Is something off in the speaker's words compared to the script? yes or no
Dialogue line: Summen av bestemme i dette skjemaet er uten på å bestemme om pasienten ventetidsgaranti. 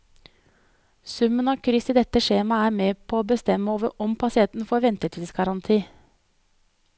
yes